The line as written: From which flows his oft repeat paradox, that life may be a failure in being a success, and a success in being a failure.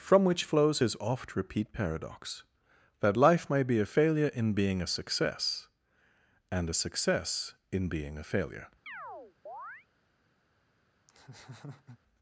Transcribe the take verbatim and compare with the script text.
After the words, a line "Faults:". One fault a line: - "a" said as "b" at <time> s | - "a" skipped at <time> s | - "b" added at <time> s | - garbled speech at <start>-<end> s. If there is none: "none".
From which flows his oft repeat paradox, that life may be a failure in being a success, and a success in being a failure.
Faults:
none